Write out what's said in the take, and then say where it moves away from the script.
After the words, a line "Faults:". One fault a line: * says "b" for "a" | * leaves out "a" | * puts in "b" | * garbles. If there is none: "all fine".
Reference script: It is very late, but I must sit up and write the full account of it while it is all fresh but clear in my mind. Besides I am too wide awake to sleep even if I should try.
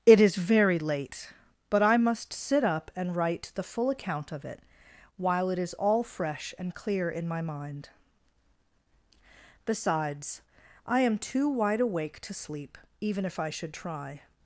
It is very late, but I must sit up and write the full account of it while it is all fresh and clear in my mind. Besides I am too wide awake to sleep even if I should try.
Faults:
* says "and" for "but"